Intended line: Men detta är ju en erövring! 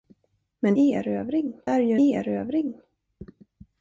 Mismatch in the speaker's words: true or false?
true